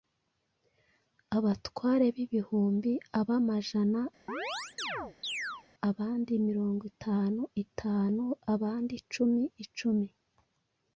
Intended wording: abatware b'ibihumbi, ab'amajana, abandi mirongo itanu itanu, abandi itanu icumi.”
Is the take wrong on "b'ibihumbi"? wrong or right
right